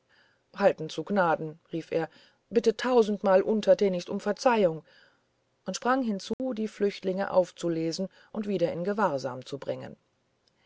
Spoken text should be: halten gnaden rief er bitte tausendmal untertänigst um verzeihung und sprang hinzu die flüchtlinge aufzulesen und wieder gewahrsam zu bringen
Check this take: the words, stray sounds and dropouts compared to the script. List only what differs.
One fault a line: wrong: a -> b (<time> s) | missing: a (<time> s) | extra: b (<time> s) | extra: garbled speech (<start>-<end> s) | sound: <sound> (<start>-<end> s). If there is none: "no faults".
extra: zu (0.9 s)
sound: dropout (6.3-6.4 s)
extra: in (8.7 s)